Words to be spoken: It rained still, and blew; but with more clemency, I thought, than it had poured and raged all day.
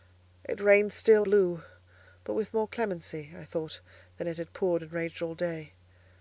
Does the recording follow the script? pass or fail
fail